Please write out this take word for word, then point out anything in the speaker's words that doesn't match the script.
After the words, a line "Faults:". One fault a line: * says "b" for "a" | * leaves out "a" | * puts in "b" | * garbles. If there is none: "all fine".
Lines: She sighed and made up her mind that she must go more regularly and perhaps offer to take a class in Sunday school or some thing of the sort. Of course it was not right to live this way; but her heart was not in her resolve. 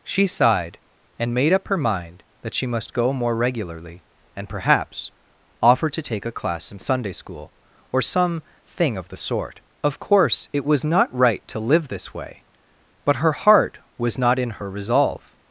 She sighed and made up her mind that she must go more regularly and perhaps offer to take a class in Sunday school or some thing of the sort. Of course it was not right to live this way; but her heart was not in her resolve.
Faults:
all fine